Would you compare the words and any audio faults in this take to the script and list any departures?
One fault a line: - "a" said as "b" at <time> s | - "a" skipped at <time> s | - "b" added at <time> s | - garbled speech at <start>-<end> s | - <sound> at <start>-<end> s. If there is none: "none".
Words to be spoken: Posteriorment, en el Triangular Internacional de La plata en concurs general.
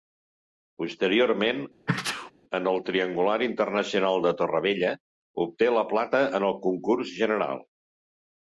- sneeze at 1.9-2.3 s
- "Torrevella obté" added at 4.4 s
- "el" added at 6.5 s